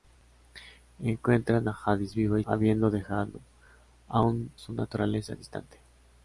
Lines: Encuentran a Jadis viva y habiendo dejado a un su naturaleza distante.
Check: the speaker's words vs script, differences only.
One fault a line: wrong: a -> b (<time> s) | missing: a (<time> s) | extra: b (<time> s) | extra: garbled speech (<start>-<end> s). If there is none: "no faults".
no faults